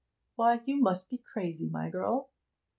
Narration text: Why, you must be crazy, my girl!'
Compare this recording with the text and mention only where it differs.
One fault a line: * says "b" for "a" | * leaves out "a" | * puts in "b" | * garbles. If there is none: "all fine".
all fine